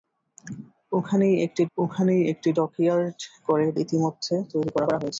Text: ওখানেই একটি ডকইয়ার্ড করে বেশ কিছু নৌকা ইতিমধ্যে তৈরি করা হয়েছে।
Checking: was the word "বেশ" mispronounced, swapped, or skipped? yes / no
yes